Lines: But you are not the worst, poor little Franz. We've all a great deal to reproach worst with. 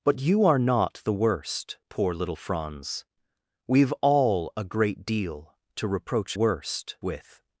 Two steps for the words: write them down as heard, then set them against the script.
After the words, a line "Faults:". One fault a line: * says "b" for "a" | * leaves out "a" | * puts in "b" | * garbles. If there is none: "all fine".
But you are not the worst, poor little Franz. We've all a great deal to reproach worst with.
Faults:
all fine